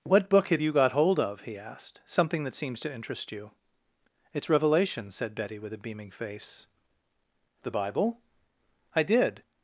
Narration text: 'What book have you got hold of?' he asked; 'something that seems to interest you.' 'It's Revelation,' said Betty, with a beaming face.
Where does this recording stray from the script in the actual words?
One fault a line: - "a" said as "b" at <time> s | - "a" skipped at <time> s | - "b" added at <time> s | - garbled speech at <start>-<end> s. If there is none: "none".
- "The Bible I did" added at 7.6 s